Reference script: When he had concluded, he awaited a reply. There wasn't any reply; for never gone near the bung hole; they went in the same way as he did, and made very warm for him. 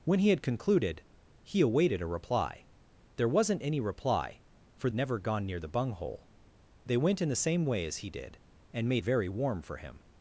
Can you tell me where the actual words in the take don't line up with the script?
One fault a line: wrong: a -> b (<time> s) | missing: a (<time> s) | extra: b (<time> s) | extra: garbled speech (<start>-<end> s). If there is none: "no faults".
no faults